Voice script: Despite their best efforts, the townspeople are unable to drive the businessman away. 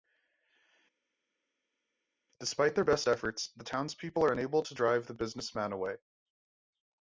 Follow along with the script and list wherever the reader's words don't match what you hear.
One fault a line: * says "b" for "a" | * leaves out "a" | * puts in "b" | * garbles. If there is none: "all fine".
all fine